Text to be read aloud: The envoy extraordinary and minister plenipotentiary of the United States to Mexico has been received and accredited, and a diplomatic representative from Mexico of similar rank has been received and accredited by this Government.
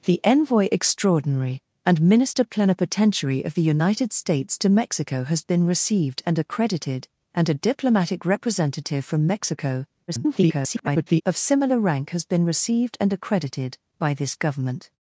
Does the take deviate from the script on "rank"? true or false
false